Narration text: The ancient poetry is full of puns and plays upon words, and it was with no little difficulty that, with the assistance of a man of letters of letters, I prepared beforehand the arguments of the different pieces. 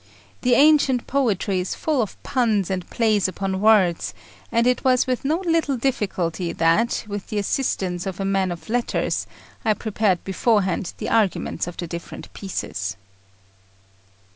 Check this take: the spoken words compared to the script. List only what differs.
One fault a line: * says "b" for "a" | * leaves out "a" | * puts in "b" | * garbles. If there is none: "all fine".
* leaves out "of letters"